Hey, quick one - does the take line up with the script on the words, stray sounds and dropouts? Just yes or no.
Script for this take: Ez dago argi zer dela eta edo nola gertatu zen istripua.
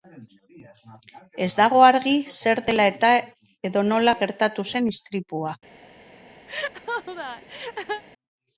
no